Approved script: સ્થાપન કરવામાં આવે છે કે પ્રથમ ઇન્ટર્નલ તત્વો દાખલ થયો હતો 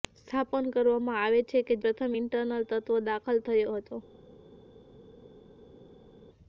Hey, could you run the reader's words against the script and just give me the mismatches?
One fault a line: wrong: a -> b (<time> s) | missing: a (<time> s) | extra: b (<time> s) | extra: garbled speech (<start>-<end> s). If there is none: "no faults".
no faults